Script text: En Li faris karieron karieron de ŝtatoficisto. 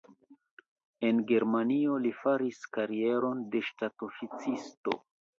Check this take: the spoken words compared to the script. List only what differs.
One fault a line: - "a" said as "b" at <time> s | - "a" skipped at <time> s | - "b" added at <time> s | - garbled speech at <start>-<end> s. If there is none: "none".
- "Germanio" added at 1.3 s
- "karieron" skipped at 3.4 s